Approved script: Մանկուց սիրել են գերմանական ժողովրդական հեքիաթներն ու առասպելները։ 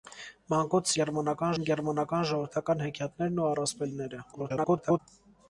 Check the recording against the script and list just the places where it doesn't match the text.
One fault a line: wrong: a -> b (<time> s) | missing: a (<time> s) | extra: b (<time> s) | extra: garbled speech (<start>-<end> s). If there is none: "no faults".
wrong: սիրել -> գերմանական (1.0 s)
extra: garbled speech (4.3-5.0 s)